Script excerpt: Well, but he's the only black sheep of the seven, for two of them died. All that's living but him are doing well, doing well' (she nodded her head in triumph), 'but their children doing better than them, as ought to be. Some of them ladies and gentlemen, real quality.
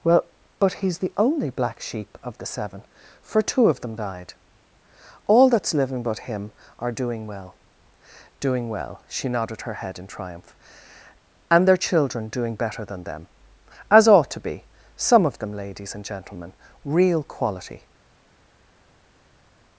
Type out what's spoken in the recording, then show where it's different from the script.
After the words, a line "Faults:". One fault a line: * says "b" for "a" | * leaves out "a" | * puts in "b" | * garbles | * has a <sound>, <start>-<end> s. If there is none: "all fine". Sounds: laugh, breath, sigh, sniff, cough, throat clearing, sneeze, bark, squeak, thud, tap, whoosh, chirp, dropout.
Well, but he's the only black sheep of the seven, for two of them died. All that's living but him are doing well, doing well' (she nodded her head in triumph), 'and their children doing better than them, as ought to be. Some of them ladies and gentlemen, real quality.
Faults:
* says "and" for "but"